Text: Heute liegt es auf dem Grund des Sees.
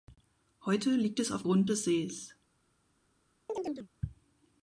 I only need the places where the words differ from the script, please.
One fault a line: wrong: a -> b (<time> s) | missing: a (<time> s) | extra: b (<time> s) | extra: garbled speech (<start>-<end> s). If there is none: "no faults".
missing: dem (1.4 s)